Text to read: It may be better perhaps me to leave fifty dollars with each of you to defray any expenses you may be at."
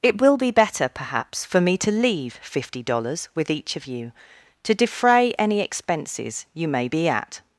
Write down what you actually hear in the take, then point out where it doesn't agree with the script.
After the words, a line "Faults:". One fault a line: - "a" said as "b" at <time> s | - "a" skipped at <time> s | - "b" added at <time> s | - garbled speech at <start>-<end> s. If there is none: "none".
It will be better perhaps for me to leave fifty dollars with each of you to defray any expenses you may be at."
Faults:
- "may" said as "will" at 0.2 s
- "for" added at 1.4 s